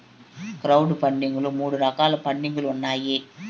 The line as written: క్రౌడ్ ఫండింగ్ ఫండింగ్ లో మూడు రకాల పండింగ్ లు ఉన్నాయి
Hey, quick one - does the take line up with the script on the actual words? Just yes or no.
no